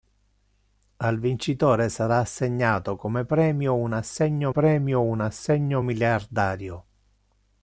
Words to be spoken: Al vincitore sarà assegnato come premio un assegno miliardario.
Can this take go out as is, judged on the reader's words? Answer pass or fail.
fail